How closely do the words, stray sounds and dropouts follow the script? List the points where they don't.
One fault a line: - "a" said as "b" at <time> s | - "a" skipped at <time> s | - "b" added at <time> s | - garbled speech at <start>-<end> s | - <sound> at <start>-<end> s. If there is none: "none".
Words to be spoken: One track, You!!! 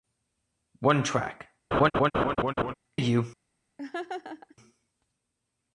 - laugh at 1.7-2.7 s
- laugh at 3.8-4.6 s